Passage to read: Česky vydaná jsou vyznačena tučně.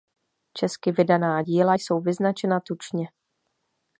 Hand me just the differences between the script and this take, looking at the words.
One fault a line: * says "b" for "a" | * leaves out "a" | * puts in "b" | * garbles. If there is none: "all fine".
* puts in "díla"